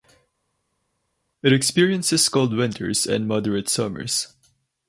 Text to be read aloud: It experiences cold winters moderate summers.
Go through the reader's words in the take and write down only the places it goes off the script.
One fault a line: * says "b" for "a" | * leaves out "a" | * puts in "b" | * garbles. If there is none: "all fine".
* puts in "and"